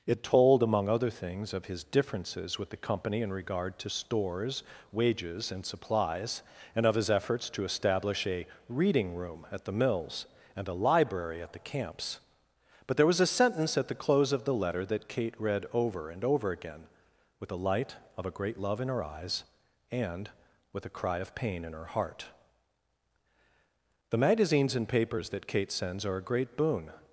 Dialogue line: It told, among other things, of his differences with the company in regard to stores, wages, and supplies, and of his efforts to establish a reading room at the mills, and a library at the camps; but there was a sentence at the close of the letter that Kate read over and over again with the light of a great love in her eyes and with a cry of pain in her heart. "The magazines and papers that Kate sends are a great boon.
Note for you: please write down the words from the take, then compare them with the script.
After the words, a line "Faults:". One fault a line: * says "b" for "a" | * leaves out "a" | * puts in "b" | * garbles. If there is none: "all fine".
It told, among other things, of his differences with the company in regard to stores, wages, and supplies, and of his efforts to establish a reading room at the mills, and a library at the camps; but there was a sentence at the close of the letter that Kate read over and over again with the light of a great love in her eyes and with a cry of pain in her heart. "The magazines and papers that Kate sends are a great boon.
Faults:
all fine